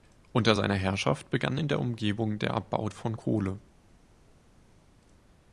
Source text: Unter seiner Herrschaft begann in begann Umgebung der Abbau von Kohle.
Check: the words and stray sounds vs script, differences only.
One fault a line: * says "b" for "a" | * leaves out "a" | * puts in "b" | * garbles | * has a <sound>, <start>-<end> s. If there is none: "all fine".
* says "der" for "begann"